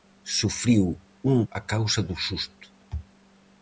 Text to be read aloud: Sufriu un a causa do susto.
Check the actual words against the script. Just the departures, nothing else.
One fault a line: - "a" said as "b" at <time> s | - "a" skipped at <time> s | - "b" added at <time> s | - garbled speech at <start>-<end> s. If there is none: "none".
none